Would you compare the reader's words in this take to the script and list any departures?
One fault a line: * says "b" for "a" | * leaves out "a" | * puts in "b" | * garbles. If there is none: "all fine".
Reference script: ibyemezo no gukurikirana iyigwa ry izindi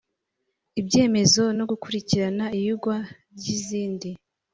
all fine